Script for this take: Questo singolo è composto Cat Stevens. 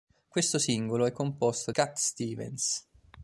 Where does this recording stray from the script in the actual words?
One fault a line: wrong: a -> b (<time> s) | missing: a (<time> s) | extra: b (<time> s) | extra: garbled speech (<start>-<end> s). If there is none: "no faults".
no faults